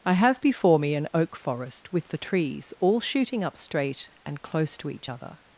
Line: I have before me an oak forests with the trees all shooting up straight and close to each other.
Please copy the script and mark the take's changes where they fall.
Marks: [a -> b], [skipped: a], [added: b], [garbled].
I have before me an oak [forests -> forest] with the trees all shooting up straight and close to each other.